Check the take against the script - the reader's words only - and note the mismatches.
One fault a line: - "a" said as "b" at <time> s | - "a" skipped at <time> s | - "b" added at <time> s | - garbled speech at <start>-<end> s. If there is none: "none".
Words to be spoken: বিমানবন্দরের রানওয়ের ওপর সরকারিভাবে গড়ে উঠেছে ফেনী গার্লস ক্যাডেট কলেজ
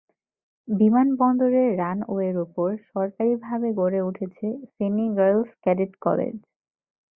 none